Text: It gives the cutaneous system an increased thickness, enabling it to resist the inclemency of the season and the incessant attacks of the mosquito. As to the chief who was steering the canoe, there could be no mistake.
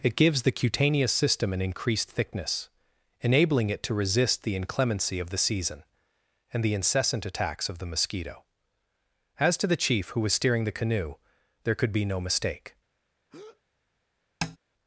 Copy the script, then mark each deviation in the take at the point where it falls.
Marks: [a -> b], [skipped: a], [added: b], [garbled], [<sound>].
It gives the cutaneous system an increased thickness, enabling it to resist the inclemency of the season and the incessant attacks of the mosquito. As to the chief who was steering the canoe, there could be no mistake. [breath] [tap]